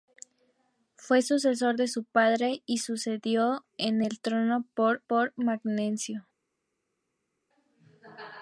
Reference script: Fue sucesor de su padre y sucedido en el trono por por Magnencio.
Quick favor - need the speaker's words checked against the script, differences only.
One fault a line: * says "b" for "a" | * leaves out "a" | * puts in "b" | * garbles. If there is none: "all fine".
all fine